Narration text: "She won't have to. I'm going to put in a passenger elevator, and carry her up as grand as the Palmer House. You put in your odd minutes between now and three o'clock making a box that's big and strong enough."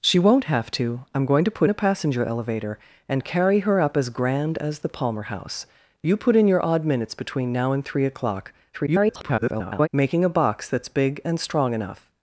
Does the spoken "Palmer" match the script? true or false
true